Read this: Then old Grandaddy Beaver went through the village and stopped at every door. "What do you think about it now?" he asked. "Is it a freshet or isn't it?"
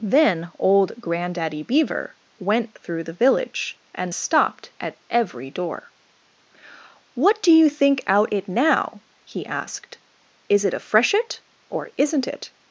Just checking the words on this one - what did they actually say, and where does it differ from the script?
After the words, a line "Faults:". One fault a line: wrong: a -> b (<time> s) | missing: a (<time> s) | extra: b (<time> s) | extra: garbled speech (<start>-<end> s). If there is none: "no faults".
Then old Grandaddy Beaver went through the village and stopped at every door. "What do you think out it now?" he asked. "Is it a freshet or isn't it?"
Faults:
wrong: about -> out (8.1 s)